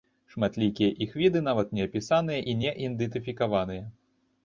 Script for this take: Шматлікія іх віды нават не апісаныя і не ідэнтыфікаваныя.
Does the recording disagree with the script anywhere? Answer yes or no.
no